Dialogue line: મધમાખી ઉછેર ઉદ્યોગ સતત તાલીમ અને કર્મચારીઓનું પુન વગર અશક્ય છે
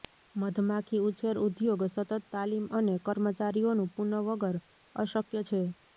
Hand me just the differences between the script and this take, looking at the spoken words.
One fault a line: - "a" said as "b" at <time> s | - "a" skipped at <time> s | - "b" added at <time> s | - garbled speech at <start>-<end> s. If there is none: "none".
none